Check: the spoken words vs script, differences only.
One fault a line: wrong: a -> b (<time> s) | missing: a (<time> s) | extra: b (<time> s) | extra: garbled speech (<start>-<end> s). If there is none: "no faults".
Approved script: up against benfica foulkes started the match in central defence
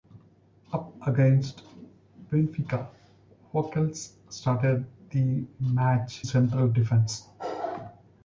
missing: in (6.2 s)